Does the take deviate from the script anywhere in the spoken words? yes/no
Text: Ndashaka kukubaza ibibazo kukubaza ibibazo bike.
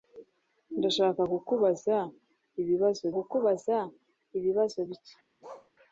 no